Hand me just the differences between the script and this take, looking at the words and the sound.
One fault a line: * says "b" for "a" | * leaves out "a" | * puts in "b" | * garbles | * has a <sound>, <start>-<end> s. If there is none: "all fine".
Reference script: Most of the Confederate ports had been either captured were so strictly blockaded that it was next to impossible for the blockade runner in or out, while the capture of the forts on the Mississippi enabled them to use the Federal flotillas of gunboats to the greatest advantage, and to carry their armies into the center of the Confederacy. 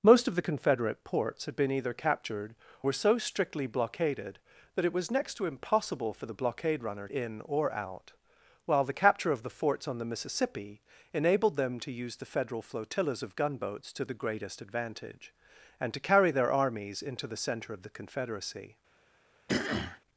* has a throat clearing, 19.5-20.0 s